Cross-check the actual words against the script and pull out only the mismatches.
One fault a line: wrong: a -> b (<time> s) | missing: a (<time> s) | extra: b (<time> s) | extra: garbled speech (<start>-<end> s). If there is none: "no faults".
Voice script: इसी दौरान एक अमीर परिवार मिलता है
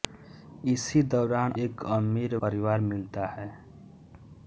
no faults